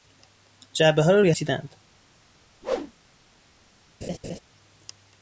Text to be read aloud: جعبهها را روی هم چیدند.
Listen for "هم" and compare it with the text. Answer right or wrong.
wrong